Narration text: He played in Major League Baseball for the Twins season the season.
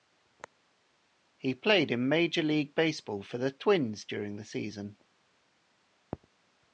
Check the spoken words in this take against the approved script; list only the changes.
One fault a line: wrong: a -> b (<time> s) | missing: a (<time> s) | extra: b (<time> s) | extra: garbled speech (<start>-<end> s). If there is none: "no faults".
wrong: season -> during (4.0 s)